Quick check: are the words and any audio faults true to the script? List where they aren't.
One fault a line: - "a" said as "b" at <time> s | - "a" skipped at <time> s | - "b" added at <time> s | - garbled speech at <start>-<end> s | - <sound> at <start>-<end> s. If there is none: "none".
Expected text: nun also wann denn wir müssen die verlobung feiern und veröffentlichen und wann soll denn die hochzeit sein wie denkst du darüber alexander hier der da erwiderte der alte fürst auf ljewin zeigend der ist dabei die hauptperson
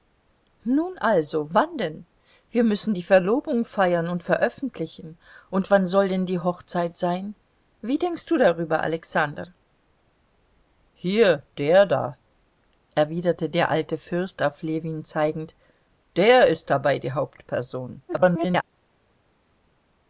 - garbled speech at 18.1-18.6 s